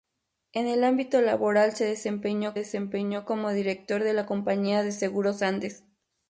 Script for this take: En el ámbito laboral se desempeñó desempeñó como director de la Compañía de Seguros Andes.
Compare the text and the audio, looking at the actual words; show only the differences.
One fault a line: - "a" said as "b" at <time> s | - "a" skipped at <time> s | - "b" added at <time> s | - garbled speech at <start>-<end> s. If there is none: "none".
none